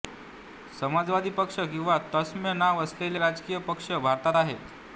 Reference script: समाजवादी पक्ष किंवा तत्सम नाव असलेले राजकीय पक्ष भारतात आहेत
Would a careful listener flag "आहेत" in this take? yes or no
no